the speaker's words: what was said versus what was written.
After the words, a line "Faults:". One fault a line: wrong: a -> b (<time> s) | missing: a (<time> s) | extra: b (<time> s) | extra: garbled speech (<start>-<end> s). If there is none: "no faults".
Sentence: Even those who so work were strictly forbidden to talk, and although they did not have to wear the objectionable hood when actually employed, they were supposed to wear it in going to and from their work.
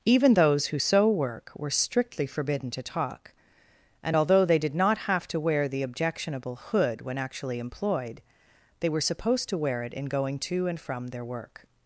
Even those who so work were strictly forbidden to talk, and although they did not have to wear the objectionable hood when actually employed, they were supposed to wear it in going to and from their work.
Faults:
no faults